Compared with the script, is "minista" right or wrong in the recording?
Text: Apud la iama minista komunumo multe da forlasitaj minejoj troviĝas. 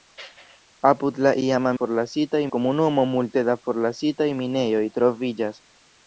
wrong